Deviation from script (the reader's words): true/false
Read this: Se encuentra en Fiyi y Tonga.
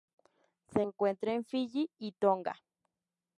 false